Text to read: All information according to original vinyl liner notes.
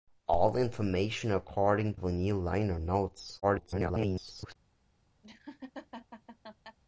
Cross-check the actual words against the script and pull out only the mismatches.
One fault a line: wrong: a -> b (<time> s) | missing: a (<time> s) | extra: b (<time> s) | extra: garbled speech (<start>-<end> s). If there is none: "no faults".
missing: to original (1.9 s)
extra: garbled speech (3.4-4.6 s)